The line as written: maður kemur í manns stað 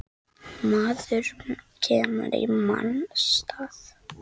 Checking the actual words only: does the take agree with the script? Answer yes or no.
yes